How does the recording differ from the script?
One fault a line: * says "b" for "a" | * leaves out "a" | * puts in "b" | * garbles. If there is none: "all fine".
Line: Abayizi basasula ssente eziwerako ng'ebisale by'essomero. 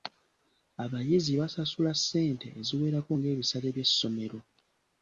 all fine